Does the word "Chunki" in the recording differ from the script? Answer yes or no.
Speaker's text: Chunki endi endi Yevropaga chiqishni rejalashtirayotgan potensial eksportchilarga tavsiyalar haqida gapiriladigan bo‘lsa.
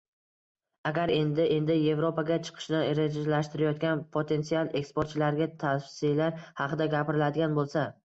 yes